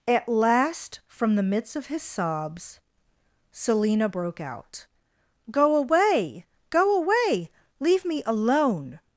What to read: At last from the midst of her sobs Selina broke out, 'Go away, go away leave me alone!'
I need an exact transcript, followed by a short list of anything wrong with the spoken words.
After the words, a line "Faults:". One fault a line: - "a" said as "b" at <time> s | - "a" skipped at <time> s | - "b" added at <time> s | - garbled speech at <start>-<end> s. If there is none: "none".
At last from the midst of his sobs Selina broke out, 'Go away, go away leave me alone!'
Faults:
- "her" said as "his" at 1.9 s